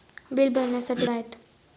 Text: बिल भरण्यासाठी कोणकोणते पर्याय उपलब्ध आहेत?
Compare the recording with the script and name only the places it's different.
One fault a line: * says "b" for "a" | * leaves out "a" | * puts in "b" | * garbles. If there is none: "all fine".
* leaves out "कोणकोणते पर्याय उपलब्ध"